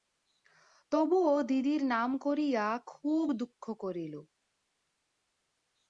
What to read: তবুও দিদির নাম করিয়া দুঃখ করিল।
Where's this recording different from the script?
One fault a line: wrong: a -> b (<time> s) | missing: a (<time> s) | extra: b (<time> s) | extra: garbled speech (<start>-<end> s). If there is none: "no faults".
extra: খুব (2.9 s)